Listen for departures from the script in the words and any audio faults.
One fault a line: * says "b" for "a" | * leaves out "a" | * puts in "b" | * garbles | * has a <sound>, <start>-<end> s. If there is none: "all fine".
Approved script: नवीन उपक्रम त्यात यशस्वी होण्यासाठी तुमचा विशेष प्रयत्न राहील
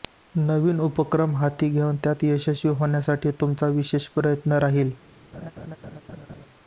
* puts in "हाती घेऊन"
* has a laugh, 5.3-6.5 s